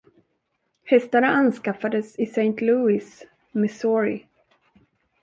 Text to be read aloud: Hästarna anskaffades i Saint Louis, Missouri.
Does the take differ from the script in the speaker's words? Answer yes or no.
no